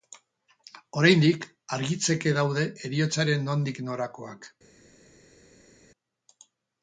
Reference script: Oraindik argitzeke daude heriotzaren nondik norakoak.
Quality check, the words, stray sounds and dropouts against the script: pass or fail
pass